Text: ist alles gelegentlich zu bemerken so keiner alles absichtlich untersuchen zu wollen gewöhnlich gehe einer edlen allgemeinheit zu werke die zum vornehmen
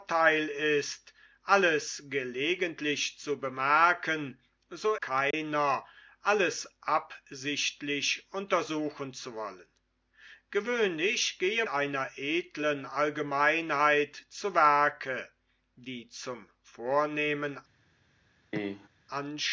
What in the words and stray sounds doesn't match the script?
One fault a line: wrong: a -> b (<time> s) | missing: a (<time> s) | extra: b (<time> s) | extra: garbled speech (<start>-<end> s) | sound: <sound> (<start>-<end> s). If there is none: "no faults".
sound: dropout (5.3-5.3 s)
sound: cough (18.5-18.9 s)